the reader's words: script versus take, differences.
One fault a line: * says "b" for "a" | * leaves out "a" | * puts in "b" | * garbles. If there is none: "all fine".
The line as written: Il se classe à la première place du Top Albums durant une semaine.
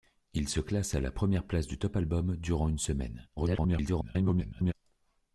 * garbles